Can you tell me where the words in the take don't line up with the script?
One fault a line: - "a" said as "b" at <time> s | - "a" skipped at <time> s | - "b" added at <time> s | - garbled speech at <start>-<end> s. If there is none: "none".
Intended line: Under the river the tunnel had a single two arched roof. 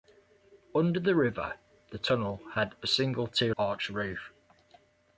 none